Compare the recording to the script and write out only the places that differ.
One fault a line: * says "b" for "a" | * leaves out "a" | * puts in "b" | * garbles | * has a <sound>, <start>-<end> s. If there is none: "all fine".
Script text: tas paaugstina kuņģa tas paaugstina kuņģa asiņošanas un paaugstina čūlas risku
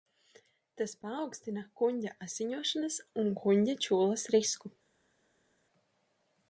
* leaves out "tas paaugstina kuņģa"
* says "kuņģa" for "paaugstina"